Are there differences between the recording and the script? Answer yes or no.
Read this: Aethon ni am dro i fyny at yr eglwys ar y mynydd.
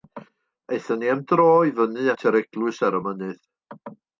no